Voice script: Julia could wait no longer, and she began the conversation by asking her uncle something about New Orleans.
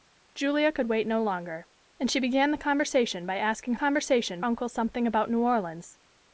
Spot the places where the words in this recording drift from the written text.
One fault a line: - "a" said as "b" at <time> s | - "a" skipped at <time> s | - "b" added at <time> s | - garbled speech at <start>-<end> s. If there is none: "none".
- "her" said as "conversation" at 3.7 s